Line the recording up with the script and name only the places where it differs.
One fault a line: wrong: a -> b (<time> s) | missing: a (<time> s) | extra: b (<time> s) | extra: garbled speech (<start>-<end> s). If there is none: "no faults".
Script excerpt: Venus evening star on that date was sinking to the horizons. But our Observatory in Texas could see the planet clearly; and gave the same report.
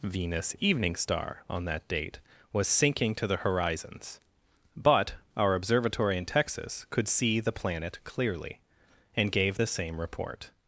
no faults